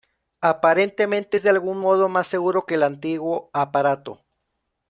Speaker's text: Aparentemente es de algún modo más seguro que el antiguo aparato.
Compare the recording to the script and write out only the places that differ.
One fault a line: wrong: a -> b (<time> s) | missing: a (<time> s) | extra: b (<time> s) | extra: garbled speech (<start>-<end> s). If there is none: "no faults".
no faults